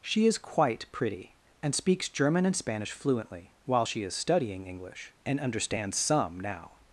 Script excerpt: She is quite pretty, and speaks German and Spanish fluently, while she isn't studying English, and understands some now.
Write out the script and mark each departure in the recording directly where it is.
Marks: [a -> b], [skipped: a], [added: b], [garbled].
She is quite pretty, and speaks German and Spanish fluently, while she [isn't -> is] studying English, and understands some now.